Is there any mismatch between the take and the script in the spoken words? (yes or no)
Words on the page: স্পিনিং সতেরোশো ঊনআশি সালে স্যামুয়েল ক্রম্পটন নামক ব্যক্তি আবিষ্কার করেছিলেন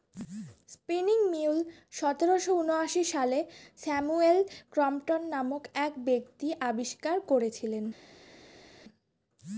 yes